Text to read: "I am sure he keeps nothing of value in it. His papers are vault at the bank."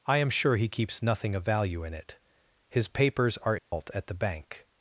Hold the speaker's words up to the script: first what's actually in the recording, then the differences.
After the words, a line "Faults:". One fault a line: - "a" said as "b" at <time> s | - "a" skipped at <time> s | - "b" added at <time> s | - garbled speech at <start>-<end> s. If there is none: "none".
"I am sure he keeps nothing of value in it. His papers are vault at the bank."
Faults:
none